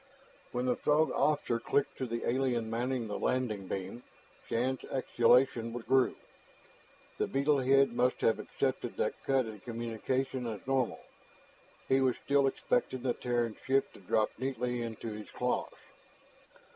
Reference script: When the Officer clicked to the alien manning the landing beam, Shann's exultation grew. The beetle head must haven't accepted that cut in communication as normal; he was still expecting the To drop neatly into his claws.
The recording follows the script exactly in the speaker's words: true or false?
false